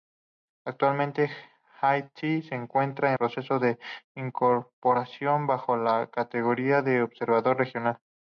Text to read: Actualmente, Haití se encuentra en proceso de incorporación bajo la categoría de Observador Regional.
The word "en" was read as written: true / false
false